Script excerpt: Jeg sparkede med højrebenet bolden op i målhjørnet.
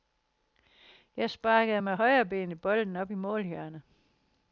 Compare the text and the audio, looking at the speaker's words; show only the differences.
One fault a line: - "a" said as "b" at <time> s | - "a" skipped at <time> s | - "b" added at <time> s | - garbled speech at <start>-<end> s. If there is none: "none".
none